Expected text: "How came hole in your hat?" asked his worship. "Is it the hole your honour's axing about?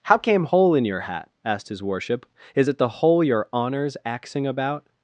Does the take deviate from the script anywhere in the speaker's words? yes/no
no